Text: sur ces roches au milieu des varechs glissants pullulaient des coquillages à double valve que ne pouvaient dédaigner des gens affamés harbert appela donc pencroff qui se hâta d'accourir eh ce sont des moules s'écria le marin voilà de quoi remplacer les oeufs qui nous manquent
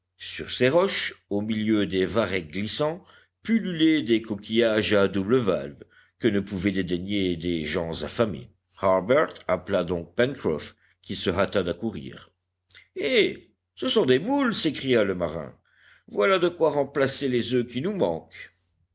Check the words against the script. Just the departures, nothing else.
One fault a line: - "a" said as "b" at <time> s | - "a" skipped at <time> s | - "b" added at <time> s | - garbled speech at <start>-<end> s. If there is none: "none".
none